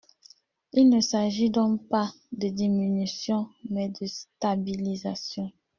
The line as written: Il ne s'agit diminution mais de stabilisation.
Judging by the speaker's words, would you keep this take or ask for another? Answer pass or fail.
fail